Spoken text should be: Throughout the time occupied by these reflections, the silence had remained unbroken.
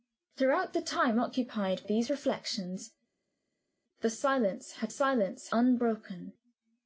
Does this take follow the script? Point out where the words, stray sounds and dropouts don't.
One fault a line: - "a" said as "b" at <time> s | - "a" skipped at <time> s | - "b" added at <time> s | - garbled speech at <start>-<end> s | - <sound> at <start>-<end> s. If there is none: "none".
- "by" skipped at 1.9 s
- "remained" said as "silence" at 4.9 s